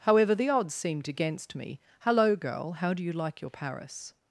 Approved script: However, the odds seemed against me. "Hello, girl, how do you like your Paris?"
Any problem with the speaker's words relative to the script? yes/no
no